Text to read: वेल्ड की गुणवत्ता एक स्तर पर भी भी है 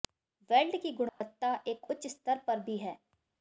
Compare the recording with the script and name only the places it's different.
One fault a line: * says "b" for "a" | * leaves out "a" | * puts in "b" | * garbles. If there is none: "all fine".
* puts in "उच्च"
* leaves out "भी"